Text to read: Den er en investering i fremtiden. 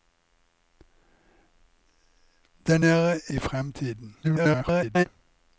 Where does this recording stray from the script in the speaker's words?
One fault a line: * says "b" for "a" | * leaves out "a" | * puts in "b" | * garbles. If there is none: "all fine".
* leaves out "en investering"
* garbles